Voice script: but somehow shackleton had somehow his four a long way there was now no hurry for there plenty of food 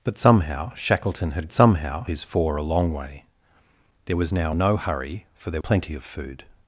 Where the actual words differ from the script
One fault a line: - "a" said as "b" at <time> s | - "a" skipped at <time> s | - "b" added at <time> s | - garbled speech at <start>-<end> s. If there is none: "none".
none